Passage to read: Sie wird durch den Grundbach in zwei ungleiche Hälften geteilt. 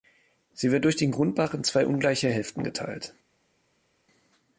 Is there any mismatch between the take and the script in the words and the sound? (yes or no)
no